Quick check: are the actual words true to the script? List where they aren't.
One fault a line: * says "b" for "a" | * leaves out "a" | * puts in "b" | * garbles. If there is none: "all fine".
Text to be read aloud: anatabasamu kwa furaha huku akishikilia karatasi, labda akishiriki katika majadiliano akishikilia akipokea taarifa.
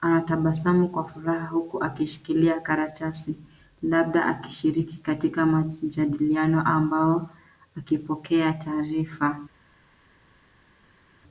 * says "ambao" for "akishikilia"